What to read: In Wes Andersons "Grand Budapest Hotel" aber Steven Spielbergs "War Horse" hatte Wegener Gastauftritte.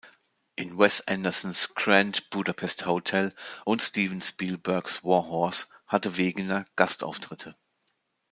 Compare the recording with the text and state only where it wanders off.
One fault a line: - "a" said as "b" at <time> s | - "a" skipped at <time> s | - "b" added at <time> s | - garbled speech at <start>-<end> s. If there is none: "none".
- "aber" said as "und" at 3.6 s